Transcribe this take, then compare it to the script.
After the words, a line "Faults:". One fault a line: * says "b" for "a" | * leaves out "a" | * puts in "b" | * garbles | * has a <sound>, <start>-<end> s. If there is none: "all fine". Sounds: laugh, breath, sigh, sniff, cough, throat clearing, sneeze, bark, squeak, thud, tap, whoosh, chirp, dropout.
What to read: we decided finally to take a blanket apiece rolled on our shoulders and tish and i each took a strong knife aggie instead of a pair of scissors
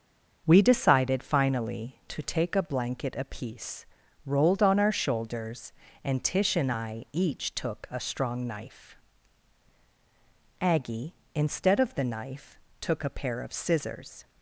we decided finally to take a blanket apiece rolled on our shoulders and tish and i each took a strong knife aggie instead of the knife took a pair of scissors
Faults:
* puts in "the knife took"